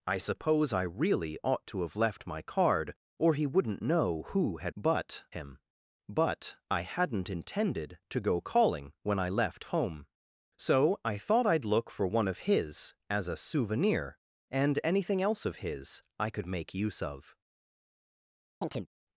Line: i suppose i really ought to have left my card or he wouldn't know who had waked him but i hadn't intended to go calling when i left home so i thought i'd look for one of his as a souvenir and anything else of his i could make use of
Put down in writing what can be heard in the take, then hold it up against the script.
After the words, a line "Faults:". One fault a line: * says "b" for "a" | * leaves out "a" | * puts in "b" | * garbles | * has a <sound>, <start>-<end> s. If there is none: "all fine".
i suppose i really ought to have left my card or he wouldn't know who had but him but i hadn't intended to go calling when i left home so i thought i'd look for one of his as a souvenir and anything else of his i could make use of
Faults:
* says "but" for "waked"
* has a chirp, 18.6-18.9 s